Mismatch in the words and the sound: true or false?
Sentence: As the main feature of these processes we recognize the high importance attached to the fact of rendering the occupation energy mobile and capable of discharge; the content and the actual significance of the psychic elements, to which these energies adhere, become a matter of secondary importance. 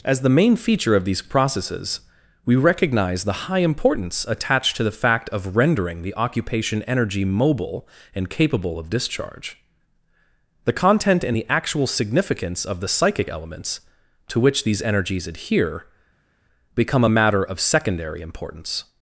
false